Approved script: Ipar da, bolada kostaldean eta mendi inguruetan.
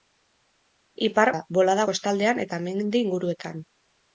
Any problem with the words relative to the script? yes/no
no